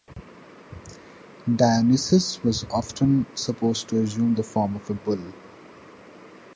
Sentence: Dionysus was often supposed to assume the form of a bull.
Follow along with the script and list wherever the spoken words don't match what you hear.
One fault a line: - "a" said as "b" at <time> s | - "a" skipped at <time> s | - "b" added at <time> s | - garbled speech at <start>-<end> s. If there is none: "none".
none